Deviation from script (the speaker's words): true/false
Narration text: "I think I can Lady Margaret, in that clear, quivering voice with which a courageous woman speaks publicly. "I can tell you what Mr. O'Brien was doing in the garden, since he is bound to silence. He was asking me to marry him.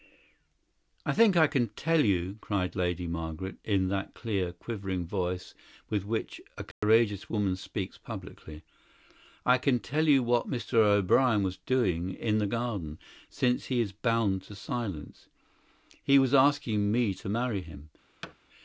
true